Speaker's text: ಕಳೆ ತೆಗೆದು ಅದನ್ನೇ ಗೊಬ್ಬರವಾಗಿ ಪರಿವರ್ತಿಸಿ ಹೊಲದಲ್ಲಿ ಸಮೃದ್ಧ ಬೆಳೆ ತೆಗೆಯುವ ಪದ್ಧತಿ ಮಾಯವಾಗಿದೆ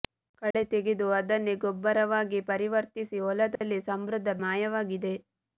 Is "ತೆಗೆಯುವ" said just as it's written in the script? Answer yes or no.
no